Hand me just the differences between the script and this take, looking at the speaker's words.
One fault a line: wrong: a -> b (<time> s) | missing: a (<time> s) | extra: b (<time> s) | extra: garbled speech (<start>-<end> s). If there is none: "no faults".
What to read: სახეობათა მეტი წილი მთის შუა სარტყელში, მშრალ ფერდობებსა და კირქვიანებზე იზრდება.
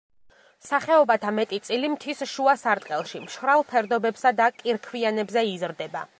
no faults